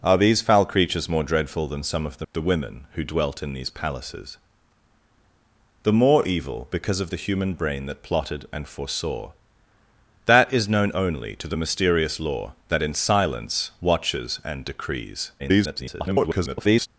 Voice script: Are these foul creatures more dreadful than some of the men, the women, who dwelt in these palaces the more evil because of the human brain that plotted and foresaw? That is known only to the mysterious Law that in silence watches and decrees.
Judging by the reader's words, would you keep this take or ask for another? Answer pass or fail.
fail